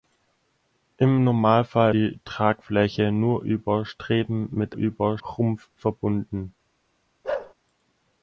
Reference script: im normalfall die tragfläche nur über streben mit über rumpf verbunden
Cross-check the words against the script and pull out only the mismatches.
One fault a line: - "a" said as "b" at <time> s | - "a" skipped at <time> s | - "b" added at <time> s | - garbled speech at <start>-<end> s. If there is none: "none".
none